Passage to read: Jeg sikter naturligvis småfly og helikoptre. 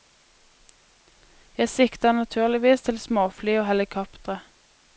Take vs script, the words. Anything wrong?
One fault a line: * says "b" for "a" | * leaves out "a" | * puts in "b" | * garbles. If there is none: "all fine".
* puts in "til"